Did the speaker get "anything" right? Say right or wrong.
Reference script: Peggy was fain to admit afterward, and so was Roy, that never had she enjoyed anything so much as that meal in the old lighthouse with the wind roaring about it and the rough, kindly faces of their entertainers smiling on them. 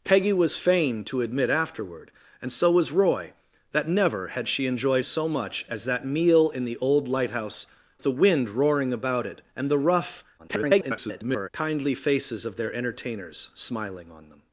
wrong